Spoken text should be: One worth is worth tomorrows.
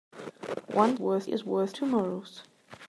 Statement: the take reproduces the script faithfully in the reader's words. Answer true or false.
true